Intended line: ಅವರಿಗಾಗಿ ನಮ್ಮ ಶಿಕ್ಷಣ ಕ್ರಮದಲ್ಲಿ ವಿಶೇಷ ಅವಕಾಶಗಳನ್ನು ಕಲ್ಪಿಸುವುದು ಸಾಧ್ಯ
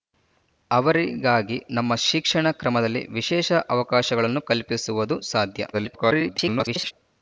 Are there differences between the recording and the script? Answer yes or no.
yes